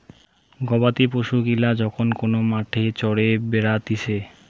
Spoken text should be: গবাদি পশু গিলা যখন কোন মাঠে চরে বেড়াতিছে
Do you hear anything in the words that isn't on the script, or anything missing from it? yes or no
no